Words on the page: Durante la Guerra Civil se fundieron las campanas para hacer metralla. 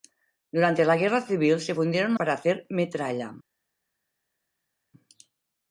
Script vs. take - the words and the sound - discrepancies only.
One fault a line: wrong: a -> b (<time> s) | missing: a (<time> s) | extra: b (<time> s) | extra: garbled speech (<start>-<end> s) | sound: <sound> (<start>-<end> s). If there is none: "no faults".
missing: las campanas (2.1 s)